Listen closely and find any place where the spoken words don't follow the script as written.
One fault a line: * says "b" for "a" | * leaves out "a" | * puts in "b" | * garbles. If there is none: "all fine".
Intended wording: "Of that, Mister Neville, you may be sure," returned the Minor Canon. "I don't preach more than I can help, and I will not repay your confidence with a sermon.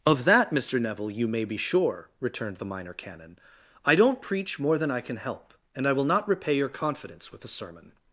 all fine